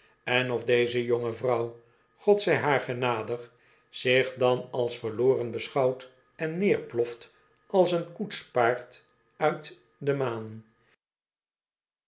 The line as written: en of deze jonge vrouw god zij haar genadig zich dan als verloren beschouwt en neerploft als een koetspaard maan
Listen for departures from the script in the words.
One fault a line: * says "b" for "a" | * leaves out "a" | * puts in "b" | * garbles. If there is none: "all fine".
* puts in "uit de"